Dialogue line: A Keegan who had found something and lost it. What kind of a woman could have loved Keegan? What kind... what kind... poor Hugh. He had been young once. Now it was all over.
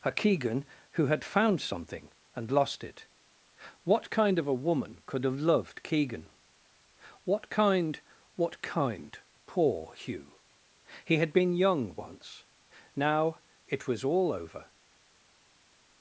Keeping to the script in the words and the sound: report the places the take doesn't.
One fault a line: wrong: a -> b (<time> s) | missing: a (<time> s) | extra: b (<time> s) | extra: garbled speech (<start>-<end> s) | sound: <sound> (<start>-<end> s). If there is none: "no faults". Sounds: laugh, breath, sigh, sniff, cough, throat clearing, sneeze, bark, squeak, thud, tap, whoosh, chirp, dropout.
no faults